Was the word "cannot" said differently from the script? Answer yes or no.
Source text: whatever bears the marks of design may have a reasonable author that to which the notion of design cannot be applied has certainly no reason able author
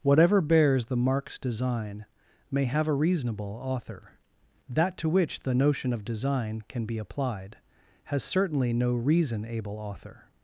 yes